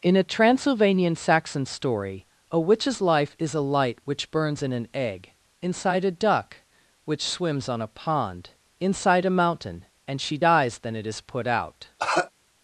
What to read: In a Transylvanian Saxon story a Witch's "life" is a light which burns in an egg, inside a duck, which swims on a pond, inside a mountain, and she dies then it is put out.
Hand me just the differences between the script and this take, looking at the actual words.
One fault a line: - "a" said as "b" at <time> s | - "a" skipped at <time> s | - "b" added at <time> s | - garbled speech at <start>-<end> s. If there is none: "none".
none